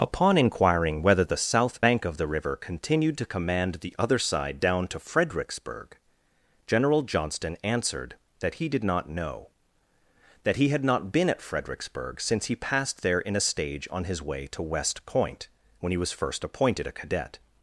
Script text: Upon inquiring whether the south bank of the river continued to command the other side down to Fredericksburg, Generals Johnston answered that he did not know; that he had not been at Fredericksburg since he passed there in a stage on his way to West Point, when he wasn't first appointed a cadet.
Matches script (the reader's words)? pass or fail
fail